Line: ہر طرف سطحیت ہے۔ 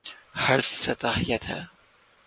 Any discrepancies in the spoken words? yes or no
yes